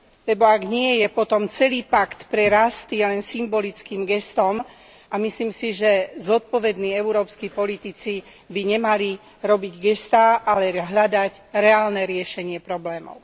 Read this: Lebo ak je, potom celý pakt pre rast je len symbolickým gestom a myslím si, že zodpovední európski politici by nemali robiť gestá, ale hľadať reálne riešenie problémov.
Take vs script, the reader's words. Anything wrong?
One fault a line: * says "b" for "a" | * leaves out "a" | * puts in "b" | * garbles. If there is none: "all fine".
* puts in "nie"